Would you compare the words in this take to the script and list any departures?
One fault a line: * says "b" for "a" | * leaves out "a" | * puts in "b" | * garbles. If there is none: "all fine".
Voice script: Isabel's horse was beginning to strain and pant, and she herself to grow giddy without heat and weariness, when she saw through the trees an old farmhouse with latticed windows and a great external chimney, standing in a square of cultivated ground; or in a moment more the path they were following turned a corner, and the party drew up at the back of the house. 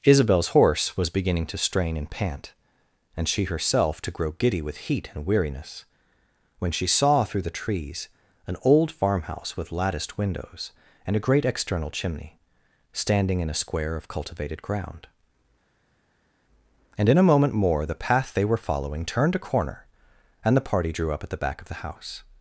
* says "with" for "without"
* says "and" for "or"